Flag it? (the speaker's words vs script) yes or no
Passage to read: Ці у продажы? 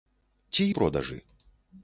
no